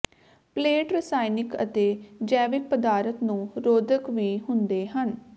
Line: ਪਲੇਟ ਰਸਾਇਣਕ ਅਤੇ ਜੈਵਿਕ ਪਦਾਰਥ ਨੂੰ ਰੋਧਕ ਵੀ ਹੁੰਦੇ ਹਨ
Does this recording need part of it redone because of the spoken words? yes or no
no